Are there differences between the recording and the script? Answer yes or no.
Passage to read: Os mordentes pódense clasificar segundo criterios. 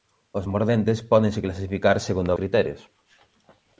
no